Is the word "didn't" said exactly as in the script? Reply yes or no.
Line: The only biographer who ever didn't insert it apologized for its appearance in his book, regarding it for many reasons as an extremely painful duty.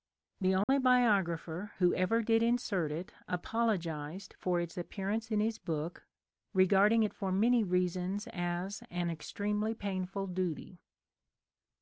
no